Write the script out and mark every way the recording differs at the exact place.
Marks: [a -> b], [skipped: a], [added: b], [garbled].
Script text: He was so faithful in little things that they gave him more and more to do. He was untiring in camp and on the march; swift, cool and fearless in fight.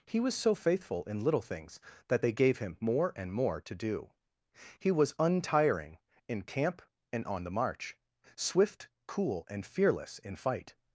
He was so faithful in little things that they gave him more and more to do. He was untiring in camp and on the march; swift, cool and fearless in fight.